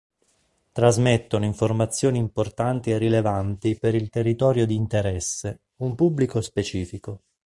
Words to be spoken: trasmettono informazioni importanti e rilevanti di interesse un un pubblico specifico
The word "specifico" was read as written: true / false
true